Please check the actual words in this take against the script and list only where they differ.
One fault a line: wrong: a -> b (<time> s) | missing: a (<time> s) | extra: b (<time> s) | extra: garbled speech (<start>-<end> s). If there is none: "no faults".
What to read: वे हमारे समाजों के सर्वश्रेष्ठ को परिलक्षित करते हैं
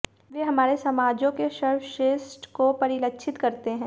no faults